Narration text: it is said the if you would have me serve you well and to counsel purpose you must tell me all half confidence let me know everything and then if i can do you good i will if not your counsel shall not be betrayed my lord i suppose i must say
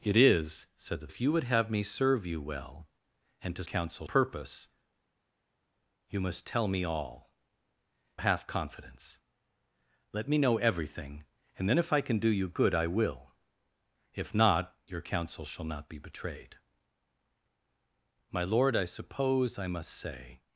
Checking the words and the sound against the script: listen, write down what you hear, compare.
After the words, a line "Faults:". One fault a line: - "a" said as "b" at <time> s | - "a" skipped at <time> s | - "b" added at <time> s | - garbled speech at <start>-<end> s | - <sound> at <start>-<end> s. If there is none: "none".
it is said the if you would have me serve you well and to counsel purpose you must tell me all half confidence let me know everything and then if i can do you good i will if not your counsel shall not be betrayed my lord i suppose i must say
Faults:
none